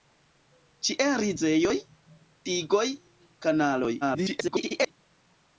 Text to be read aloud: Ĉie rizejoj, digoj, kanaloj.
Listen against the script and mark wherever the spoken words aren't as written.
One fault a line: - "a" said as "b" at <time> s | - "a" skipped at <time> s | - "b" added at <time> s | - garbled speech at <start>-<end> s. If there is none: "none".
- garbled speech at 4.0-4.9 s